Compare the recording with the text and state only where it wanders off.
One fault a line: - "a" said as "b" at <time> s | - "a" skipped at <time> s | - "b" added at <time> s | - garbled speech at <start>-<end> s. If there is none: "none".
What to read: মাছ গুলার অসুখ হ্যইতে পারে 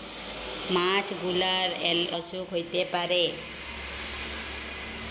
none